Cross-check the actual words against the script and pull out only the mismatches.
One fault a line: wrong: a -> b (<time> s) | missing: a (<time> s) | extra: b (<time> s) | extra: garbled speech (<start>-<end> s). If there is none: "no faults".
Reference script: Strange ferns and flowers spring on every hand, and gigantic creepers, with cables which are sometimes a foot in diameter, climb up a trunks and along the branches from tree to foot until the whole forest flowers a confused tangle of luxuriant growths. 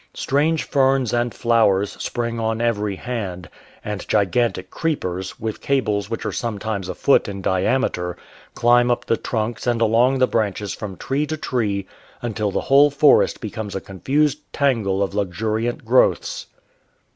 wrong: a -> the (9.0 s)
wrong: foot -> tree (11.4 s)
wrong: flowers -> becomes (13.4 s)